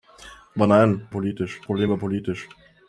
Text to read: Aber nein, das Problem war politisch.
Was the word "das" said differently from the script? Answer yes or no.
yes